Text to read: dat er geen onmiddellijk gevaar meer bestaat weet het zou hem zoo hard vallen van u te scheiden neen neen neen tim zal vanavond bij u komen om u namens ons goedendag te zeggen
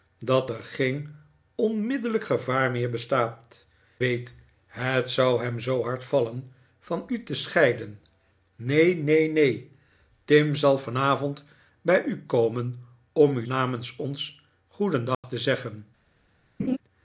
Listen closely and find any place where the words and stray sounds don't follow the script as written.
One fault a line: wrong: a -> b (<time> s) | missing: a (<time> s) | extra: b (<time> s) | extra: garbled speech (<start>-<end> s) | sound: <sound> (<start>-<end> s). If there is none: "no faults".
sound: dropout (15.1-15.2 s)
sound: laugh (16.6-16.8 s)